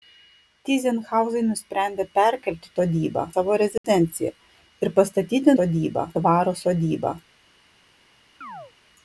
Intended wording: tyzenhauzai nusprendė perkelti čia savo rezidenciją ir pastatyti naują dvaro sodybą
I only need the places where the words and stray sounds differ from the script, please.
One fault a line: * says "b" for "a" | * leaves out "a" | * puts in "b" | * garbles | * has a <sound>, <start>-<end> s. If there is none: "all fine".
* says "sodybą" for "čia"
* has a dropout, 3.8-3.8 s
* says "sodybą" for "naują"
* has a chirp, 8.4-8.7 s